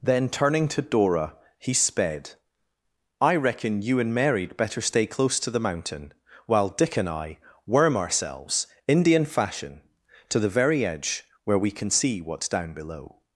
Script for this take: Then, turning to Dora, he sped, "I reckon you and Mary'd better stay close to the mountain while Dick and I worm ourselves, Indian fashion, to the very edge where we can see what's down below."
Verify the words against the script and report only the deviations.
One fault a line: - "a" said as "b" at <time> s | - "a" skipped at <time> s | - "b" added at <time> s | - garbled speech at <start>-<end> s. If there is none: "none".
none